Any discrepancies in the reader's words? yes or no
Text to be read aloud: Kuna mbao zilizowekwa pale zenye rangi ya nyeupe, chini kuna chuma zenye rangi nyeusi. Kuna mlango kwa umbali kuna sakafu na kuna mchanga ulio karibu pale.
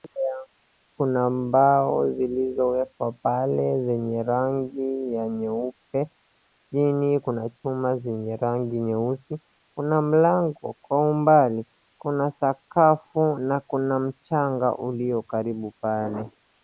no